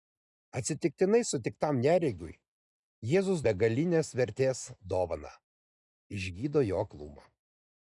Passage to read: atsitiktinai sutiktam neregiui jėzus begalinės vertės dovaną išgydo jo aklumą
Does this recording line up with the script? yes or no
yes